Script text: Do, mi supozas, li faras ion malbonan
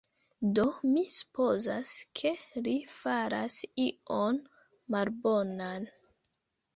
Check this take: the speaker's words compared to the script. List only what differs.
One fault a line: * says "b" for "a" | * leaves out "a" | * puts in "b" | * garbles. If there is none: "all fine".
* puts in "ke"